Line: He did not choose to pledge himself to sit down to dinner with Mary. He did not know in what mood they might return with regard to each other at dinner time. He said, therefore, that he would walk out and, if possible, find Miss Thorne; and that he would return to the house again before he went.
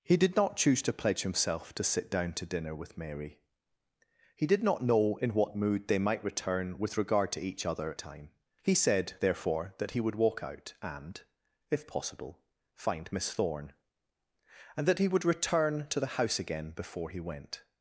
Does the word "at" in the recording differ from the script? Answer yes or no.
yes